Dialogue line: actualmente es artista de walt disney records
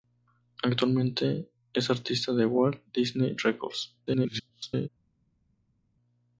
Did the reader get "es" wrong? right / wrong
right